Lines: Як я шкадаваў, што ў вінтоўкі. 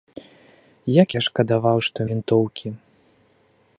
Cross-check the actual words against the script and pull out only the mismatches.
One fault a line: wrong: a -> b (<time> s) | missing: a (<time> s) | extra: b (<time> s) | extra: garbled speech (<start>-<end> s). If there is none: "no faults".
no faults